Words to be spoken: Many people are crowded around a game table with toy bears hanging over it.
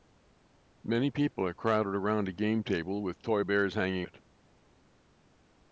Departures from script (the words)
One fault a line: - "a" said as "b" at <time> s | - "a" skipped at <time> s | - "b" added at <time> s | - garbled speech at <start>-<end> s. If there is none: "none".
- "over" skipped at 4.1 s